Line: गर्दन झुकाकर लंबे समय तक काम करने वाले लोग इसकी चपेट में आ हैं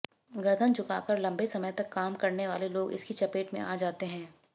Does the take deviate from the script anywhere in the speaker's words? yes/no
yes